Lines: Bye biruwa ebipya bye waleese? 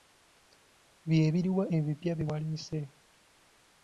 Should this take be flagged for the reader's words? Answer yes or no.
no